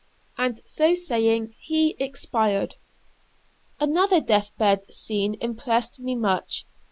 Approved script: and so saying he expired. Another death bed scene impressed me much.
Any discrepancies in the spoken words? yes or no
no